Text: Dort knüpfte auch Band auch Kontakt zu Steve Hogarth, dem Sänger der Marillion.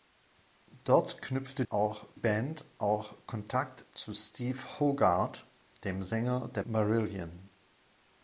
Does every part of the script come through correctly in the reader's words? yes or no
yes